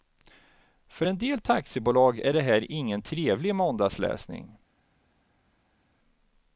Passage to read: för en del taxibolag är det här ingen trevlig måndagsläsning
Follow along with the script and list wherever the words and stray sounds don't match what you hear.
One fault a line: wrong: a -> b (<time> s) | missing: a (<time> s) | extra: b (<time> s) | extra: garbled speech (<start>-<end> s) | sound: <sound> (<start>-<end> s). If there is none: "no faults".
no faults